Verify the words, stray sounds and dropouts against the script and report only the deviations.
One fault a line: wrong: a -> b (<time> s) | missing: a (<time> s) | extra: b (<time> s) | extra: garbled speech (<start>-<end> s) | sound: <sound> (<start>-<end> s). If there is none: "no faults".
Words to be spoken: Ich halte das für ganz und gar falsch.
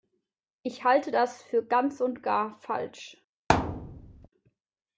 sound: thud (3.5-4.3 s)